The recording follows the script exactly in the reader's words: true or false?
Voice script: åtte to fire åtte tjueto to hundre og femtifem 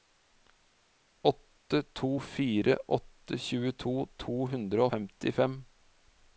false